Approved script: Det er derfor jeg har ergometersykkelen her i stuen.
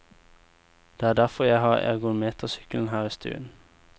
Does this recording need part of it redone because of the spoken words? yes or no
no